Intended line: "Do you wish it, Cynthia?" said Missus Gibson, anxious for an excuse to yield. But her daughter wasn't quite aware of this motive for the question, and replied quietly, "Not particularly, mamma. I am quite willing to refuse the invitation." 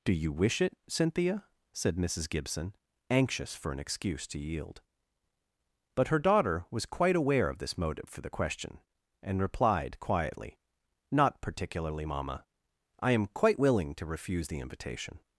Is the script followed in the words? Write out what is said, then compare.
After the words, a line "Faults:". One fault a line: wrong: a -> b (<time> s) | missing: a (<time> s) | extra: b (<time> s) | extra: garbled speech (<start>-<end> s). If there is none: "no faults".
"Do you wish it, Cynthia?" said Missus Gibson, anxious for an excuse to yield. But her daughter was quite aware of this motive for the question, and replied quietly, "Not particularly, mamma. I am quite willing to refuse the invitation."
Faults:
wrong: wasn't -> was (6.7 s)